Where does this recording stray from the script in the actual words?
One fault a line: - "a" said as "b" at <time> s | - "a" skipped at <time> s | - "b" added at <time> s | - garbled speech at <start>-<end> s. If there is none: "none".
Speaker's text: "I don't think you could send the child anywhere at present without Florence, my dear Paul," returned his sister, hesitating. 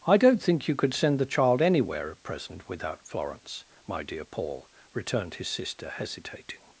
none